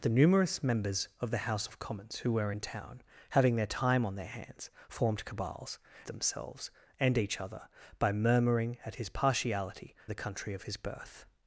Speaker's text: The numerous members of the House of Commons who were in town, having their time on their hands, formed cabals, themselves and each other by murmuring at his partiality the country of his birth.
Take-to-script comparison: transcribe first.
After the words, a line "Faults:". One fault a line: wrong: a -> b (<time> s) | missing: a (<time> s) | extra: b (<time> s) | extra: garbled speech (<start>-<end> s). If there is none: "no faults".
The numerous members of the House of Commons who were in town, having their time on their hands, formed cabals, themselves and each other by murmuring at his partiality the country of his birth.
Faults:
no faults